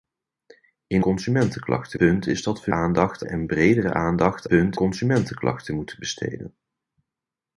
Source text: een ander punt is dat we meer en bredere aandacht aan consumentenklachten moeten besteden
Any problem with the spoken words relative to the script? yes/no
yes